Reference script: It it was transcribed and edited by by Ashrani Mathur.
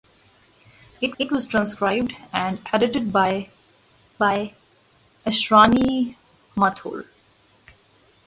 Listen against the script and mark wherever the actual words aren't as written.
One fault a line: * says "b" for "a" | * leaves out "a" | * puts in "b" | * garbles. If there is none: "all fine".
all fine